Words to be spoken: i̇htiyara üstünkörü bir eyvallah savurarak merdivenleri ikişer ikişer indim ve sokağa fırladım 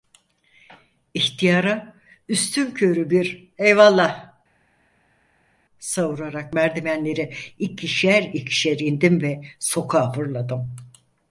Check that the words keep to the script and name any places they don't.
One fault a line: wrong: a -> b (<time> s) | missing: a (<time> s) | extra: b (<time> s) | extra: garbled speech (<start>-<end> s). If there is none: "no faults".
no faults